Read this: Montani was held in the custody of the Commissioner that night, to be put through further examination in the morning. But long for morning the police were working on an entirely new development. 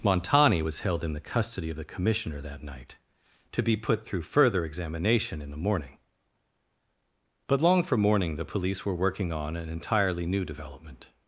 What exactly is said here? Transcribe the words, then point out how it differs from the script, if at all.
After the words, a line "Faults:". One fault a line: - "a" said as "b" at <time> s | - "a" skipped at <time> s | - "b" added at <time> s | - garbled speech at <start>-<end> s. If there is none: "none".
Montani was held in the custody of the Commissioner that night, to be put through further examination in the morning. But long for morning the police were working on an entirely new development.
Faults:
none